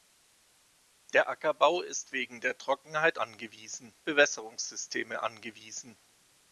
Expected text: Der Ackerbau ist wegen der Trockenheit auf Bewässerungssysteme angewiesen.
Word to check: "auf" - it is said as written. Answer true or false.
false